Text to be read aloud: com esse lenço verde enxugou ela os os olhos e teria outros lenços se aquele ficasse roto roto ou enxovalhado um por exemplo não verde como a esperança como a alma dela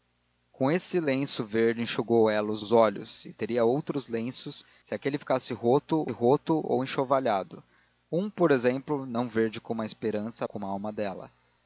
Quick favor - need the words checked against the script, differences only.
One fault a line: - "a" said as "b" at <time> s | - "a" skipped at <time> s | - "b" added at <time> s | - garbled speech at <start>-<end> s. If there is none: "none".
none